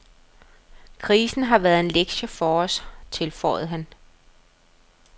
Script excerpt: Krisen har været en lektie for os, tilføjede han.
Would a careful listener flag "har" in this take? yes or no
no